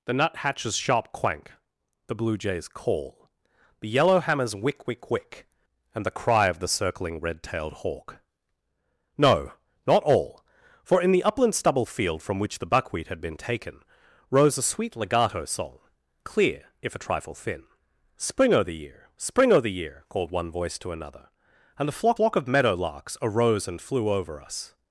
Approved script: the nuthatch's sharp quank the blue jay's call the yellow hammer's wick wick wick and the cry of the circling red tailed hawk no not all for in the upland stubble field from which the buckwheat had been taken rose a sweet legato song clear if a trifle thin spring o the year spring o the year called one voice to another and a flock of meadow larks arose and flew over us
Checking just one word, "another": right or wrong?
right